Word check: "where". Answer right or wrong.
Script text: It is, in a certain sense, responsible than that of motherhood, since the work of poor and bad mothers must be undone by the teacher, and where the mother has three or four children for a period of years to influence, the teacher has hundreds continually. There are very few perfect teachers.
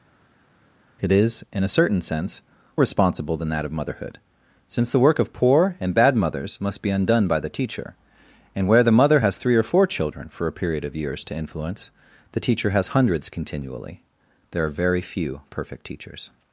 right